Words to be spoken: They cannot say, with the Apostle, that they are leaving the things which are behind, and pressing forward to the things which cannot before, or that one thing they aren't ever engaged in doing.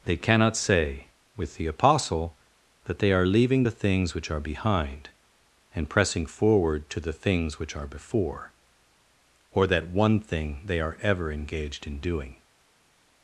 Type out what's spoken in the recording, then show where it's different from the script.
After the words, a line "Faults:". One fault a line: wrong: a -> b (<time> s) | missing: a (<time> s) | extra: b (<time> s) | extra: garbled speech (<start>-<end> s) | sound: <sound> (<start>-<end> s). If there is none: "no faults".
They cannot say, with the Apostle, that they are leaving the things which are behind, and pressing forward to the things which are before, or that one thing they are ever engaged in doing.
Faults:
wrong: cannot -> are (7.7 s)
wrong: aren't -> are (10.8 s)